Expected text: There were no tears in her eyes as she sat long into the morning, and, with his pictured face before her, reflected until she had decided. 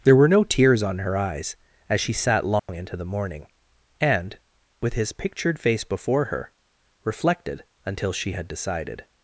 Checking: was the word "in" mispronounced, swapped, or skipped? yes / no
yes